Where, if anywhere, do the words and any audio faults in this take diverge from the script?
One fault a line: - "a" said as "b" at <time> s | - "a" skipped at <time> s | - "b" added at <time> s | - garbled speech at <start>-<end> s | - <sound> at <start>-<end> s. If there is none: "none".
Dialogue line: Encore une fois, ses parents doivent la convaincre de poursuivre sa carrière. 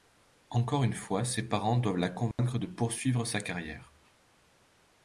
- dropout at 2.3-2.4 s